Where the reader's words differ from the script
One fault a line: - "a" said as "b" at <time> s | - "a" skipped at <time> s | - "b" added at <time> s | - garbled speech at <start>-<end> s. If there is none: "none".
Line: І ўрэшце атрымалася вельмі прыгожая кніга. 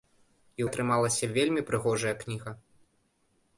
- "ўрэшце" skipped at 0.7 s